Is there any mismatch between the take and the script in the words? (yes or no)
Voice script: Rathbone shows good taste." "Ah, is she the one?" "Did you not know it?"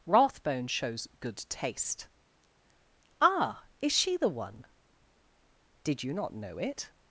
no